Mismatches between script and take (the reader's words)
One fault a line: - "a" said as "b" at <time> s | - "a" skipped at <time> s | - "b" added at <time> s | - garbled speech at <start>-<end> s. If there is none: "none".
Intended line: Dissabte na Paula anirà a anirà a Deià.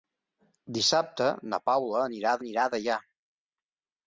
none